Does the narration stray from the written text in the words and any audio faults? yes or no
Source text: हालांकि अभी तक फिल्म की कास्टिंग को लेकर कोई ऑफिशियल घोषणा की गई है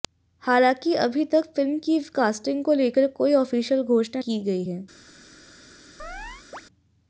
yes